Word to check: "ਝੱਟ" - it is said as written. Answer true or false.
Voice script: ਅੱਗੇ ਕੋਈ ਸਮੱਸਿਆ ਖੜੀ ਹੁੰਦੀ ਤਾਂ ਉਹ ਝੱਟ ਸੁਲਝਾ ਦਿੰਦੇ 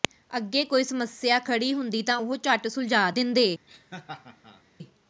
true